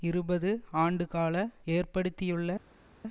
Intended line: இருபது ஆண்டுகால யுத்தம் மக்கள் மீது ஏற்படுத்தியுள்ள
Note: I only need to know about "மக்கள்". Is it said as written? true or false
false